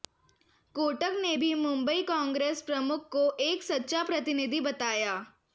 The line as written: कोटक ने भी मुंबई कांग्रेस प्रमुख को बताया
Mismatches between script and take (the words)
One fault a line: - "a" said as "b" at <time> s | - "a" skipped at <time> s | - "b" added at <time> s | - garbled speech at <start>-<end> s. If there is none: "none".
- "एक सच्चा प्रतिनिधि" added at 3.4 s